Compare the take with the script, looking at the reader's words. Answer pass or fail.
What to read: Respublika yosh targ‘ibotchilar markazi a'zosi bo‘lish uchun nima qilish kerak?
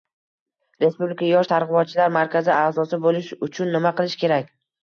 pass